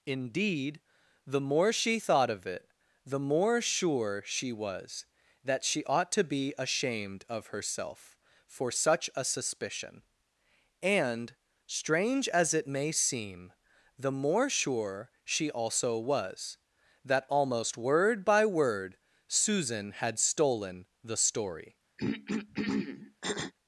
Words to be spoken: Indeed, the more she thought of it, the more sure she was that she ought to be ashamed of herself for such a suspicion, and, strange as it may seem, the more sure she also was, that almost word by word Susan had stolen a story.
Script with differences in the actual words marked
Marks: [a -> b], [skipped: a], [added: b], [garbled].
Indeed, the more she thought of it, the more sure she was that she ought to be ashamed of herself for such a suspicion, and, strange as it may seem, the more sure she also was, that almost word by word Susan had stolen [a -> the] story.